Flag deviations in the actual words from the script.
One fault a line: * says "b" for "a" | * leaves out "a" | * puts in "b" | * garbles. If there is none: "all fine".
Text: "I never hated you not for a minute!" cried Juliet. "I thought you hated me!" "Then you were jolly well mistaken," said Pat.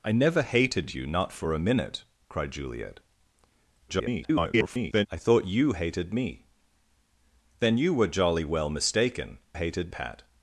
* garbles
* says "hated" for "said"